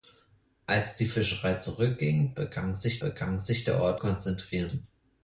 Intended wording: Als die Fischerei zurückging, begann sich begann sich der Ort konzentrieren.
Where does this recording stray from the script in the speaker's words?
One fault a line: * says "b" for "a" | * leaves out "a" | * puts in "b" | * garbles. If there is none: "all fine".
all fine